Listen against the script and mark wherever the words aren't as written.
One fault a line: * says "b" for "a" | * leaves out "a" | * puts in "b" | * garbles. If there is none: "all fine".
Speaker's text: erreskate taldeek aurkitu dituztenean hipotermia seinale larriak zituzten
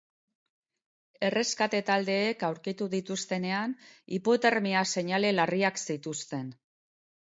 all fine